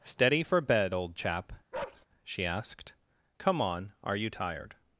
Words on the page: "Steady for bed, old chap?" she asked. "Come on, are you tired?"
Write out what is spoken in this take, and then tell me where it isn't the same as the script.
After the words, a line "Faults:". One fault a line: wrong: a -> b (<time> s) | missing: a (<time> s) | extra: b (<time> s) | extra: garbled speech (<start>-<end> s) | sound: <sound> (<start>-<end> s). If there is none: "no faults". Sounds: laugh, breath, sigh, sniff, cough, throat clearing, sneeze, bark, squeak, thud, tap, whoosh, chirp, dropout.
"Steady for bed, old chap?" she asked. "Come on, are you tired?"
Faults:
sound: bark (1.7-2.1 s)